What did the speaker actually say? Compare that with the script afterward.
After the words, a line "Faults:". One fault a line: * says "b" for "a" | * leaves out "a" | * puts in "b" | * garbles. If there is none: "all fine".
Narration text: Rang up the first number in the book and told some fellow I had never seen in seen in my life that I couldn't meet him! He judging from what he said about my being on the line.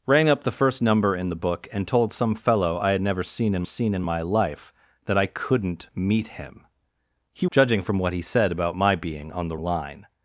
Rang up the first number in the book and told some fellow I had never seen in seen in my life that I couldn't meet him! He judging from what he said about my being on the line.
Faults:
all fine